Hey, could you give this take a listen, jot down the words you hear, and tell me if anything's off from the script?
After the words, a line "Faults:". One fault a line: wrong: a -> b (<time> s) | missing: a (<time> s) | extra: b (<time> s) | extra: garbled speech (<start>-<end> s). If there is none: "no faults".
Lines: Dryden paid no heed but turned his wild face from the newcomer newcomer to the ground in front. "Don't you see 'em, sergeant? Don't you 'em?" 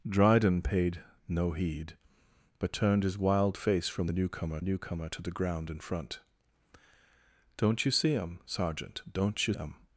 Dryden paid no heed but turned his wild face from the newcomer newcomer to the ground in front. "Don't you see 'em, sergeant? Don't you 'em?"
Faults:
no faults